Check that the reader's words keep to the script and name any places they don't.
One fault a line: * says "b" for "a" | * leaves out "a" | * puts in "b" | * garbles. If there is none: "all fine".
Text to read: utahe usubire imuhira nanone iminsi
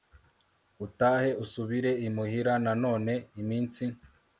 all fine